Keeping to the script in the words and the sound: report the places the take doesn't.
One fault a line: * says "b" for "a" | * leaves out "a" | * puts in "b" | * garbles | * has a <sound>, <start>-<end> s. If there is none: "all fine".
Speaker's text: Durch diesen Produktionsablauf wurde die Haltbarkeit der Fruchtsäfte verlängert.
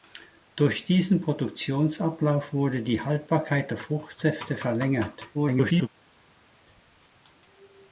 * garbles